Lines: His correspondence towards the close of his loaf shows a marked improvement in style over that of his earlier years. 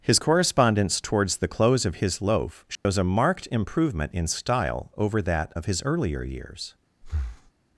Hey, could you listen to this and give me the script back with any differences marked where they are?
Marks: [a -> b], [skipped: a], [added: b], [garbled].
His correspondence towards the close of his loaf shows a marked improvement in style over that of his earlier years.